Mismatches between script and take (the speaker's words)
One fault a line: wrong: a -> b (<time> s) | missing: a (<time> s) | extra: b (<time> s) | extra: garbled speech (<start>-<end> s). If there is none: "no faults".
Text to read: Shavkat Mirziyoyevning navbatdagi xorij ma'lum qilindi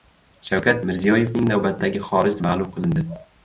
no faults